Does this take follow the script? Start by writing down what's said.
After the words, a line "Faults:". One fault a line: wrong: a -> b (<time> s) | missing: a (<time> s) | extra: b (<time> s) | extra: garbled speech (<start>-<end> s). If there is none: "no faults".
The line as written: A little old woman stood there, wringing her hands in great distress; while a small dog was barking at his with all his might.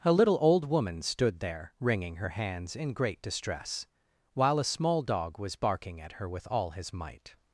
A little old woman stood there, wringing her hands in great distress; while a small dog was barking at her with all his might.
Faults:
wrong: his -> her (6.1 s)